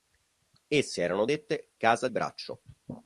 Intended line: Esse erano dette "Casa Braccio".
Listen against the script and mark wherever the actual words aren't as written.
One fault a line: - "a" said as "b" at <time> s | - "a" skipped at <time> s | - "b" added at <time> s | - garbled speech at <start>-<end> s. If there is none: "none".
none